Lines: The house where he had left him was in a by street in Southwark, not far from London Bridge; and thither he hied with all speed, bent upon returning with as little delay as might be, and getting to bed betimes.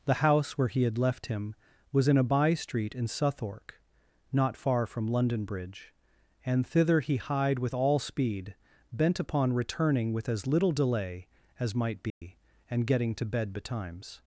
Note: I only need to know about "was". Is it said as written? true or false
true